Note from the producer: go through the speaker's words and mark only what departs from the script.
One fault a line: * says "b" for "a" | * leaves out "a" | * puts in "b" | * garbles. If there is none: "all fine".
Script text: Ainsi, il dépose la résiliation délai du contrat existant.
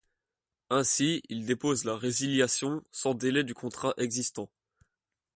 * puts in "sans"